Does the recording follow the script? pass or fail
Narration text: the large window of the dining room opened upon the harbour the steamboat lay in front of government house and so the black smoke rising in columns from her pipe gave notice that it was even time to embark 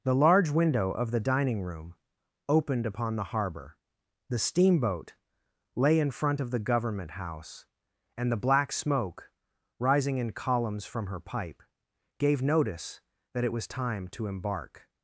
fail